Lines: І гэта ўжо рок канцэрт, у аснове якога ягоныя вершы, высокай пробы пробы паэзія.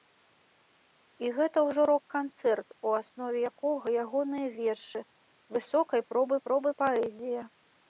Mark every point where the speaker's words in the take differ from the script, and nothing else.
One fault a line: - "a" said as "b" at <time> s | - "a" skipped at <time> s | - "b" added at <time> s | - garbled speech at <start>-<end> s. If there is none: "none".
none